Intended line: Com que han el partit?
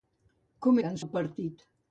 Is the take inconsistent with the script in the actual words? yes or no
no